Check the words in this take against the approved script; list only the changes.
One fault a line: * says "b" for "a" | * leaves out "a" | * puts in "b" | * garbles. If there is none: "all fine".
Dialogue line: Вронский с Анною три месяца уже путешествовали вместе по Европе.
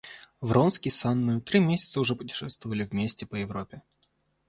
all fine